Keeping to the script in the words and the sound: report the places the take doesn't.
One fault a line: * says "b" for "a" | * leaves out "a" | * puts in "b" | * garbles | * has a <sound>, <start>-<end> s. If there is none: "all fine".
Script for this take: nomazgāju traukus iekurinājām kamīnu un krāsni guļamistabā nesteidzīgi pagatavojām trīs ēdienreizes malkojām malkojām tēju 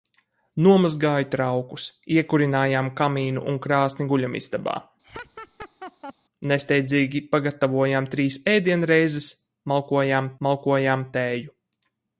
* has a laugh, 5.0-6.1 s